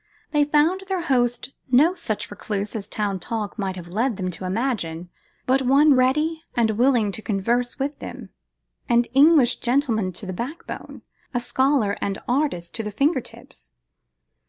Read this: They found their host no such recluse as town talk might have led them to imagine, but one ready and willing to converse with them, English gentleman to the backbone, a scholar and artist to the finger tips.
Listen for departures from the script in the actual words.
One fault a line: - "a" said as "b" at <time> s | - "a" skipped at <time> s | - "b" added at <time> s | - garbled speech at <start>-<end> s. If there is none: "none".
- "an" added at 8.9 s